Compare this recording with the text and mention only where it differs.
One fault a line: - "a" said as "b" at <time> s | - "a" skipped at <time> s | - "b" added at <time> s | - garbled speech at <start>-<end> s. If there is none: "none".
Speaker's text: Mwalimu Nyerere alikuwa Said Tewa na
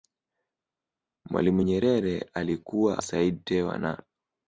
none